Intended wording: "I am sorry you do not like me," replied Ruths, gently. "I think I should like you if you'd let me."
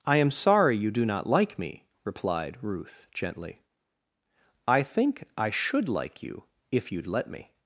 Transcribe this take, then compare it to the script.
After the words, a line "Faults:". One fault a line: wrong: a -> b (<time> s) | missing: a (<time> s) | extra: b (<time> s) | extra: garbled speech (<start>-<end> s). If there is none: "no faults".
"I am sorry you do not like me," replied Ruth, gently. "I think I should like you if you'd let me."
Faults:
wrong: Ruths -> Ruth (2.6 s)